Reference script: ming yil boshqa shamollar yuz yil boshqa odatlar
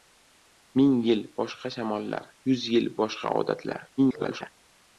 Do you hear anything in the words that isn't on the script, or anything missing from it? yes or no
yes